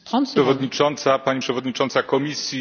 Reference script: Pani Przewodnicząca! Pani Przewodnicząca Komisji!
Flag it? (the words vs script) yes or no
no